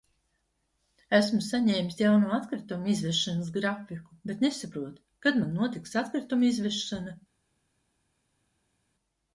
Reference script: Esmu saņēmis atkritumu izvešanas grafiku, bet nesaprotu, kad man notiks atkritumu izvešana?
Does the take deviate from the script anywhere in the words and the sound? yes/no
yes